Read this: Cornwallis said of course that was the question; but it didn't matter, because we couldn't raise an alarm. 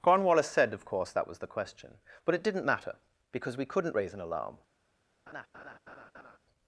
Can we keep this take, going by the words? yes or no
yes